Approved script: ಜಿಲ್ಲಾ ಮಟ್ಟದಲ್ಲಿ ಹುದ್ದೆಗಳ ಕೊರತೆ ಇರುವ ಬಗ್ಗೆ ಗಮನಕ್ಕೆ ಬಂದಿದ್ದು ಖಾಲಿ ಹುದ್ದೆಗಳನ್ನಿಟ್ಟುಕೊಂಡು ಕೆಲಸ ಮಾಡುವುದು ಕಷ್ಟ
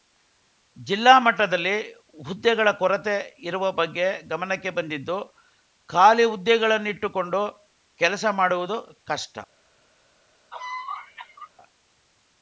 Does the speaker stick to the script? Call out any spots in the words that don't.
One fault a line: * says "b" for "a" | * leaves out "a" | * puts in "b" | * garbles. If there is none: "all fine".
all fine